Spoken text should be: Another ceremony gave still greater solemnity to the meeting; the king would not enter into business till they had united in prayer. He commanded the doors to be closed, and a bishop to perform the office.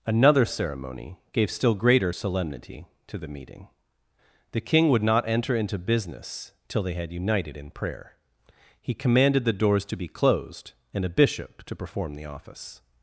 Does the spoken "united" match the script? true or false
true